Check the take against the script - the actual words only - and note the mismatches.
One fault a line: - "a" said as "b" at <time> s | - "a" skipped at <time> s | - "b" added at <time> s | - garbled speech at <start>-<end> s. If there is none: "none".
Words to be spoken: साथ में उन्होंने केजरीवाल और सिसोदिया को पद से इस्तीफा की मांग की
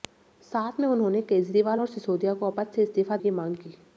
none